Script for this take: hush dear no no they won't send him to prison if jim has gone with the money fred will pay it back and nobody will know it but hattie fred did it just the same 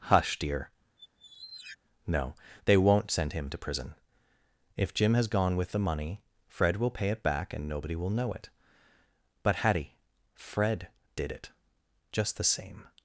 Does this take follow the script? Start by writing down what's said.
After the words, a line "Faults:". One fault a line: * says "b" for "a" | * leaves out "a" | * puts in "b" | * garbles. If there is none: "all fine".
hush dear no they won't send him to prison if jim has gone with the money fred will pay it back and nobody will know it but hattie fred did it just the same
Faults:
* leaves out "no"